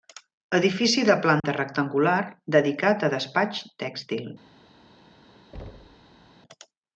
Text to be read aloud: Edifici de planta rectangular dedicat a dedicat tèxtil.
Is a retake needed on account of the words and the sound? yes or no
yes